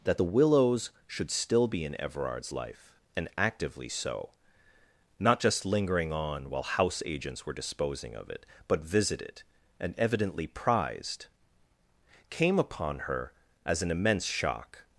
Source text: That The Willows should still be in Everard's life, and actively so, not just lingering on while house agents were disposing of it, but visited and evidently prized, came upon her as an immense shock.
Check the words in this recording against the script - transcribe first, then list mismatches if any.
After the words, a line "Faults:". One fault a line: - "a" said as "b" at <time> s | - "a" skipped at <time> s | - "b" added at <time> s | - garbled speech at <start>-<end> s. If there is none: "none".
That The Willows should still be in Everard's life, and actively so, not just lingering on while house agents were disposing of it, but visited and evidently prized, came upon her as an immense shock.
Faults:
none